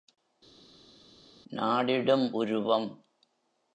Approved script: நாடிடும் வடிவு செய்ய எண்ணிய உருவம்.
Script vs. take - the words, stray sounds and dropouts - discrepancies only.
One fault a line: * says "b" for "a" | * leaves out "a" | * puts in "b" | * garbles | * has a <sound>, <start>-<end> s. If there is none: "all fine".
* leaves out "வடிவு செய்ய எண்ணிய"